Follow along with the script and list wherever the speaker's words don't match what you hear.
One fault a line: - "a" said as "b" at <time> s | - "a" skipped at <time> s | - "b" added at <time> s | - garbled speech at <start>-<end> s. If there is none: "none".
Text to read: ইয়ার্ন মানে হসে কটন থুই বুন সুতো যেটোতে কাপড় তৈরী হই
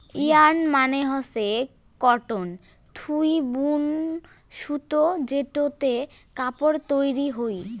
none